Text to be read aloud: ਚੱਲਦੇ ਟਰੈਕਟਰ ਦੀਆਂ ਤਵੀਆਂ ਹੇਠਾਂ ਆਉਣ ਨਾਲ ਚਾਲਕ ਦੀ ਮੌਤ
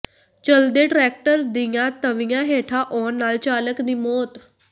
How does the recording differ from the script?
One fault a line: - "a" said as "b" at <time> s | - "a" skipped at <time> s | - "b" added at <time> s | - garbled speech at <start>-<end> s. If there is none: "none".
none